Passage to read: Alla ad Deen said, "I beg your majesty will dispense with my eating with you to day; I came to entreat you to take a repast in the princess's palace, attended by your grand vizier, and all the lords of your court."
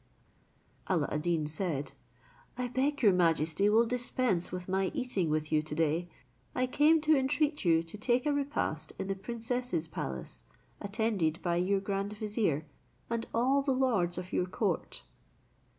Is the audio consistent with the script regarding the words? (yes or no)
yes